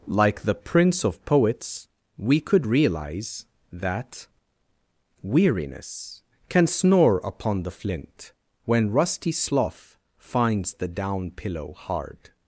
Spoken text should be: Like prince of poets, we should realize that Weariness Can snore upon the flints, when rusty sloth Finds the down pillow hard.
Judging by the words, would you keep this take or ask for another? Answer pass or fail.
fail